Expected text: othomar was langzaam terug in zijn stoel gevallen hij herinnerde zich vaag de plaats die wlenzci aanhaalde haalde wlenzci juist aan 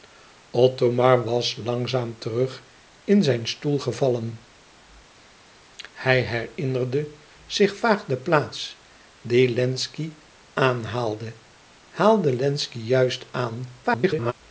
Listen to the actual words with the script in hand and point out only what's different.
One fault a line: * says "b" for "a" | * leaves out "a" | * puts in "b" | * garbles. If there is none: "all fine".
* garbles